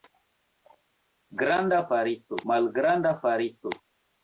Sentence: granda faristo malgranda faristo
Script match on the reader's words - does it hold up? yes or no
yes